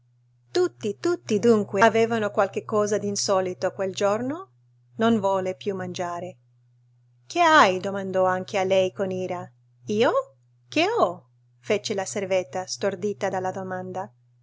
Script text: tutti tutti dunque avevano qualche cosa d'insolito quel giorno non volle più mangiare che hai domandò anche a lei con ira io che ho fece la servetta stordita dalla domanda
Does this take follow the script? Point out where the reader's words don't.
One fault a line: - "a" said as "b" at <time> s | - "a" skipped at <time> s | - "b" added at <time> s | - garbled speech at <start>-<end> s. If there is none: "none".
none